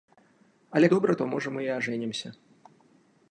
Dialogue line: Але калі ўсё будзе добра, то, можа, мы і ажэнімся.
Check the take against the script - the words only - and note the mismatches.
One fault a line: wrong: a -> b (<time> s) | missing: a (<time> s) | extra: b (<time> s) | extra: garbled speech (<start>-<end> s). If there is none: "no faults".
missing: калі ўсё будзе (0.9 s)